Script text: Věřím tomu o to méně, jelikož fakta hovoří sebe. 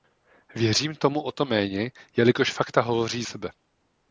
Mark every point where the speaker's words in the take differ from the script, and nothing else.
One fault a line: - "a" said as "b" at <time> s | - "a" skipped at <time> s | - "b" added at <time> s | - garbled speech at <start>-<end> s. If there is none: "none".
none